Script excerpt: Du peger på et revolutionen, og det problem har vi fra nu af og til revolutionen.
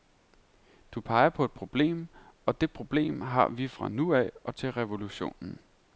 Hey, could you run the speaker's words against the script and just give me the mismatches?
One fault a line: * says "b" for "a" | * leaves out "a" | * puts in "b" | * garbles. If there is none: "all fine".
* says "problem" for "revolutionen"